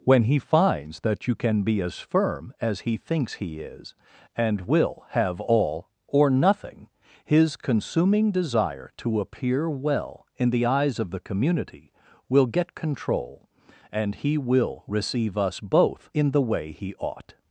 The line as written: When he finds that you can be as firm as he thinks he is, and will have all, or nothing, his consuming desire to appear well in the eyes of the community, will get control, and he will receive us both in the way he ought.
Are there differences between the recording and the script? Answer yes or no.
no